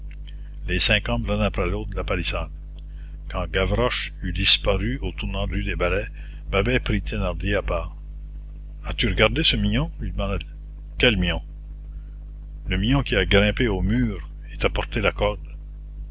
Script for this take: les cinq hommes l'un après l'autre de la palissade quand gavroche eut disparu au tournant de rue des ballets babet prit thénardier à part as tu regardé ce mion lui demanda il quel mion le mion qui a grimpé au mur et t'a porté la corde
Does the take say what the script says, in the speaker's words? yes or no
yes